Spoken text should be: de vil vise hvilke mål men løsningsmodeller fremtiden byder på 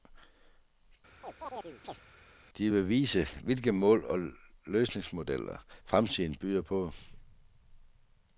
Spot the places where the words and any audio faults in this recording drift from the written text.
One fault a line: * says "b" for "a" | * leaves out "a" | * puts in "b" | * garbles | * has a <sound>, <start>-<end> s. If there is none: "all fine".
* has a chirp, 1.2-2.0 s
* says "og" for "men"